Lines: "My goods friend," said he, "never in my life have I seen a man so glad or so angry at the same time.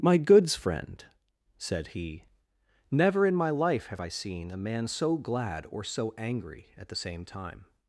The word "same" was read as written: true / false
true